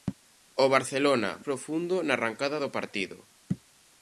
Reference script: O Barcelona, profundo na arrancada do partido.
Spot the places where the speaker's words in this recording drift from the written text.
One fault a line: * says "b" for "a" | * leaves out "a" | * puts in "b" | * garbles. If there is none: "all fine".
all fine